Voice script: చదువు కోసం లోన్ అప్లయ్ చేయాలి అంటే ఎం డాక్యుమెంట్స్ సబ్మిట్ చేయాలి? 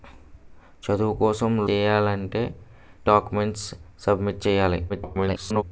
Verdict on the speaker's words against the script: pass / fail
fail